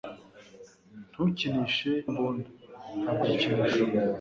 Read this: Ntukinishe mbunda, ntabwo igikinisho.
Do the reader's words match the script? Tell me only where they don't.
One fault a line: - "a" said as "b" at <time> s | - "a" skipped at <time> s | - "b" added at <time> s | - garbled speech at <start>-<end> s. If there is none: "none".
none